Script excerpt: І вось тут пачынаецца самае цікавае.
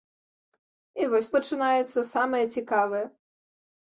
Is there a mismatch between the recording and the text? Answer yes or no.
yes